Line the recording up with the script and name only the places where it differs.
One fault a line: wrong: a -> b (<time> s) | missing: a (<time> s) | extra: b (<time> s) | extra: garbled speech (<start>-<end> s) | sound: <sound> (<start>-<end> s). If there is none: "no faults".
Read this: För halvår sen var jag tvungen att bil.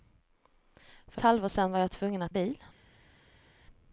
no faults